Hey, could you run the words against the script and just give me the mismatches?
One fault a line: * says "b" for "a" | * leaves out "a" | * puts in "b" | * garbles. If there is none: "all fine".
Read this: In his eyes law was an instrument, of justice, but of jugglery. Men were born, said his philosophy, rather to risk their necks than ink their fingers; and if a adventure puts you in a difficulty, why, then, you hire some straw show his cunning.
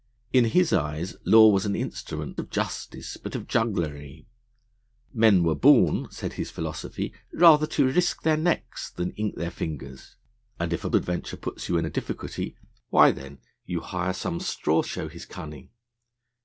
all fine